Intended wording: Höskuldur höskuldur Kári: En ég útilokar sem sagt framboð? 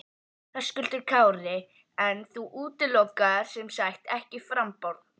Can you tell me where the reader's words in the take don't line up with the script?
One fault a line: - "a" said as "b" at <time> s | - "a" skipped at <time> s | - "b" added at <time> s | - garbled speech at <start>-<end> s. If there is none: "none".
- "höskuldur" skipped at 1.0 s
- "ég" said as "þú" at 2.3 s
- "ekki" added at 4.2 s